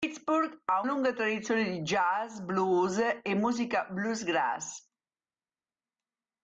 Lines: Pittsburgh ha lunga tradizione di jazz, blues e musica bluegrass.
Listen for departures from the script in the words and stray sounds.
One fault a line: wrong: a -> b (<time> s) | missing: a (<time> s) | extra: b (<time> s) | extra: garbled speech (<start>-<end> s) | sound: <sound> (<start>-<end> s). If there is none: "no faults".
no faults